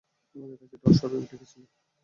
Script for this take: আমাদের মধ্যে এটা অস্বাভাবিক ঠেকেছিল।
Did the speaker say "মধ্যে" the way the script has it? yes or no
no